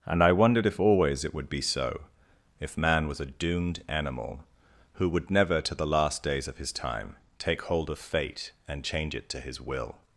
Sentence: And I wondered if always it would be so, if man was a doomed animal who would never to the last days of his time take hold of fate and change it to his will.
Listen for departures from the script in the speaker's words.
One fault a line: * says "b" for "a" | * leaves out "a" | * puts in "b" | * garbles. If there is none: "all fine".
all fine